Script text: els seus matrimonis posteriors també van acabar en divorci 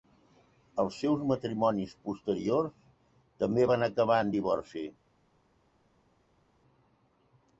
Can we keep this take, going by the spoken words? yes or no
yes